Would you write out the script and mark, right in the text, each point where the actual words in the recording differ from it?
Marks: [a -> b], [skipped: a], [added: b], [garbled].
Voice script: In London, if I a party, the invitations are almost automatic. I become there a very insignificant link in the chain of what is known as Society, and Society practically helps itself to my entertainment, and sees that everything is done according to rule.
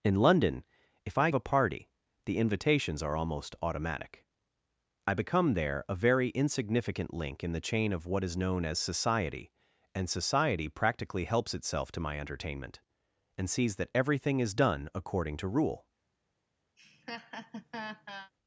In London, if I a party, the invitations are almost automatic. I become there a very insignificant link in the chain of what is known as Society, and Society practically helps itself to my entertainment, and sees that everything is done according to rule.